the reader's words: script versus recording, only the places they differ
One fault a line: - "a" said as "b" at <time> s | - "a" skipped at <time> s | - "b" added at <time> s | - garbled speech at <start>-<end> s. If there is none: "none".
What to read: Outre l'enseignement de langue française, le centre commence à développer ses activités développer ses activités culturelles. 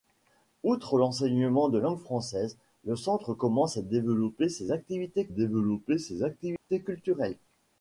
none